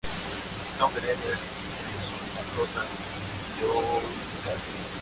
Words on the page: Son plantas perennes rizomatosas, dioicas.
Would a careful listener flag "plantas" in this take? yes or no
yes